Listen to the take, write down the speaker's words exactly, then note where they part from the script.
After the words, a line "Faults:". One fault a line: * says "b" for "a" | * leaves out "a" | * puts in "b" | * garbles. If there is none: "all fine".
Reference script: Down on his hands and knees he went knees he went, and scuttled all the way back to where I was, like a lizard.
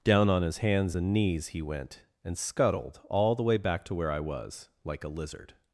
Down on his hands and knees he went, and scuttled all the way back to where I was, like a lizard.
Faults:
* leaves out "knees he went"